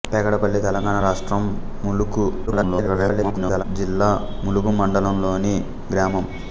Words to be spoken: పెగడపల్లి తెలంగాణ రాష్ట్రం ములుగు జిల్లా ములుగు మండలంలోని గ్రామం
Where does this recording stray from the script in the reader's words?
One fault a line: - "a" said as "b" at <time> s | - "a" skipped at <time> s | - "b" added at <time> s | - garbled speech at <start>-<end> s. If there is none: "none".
- garbled speech at 2.5-3.6 s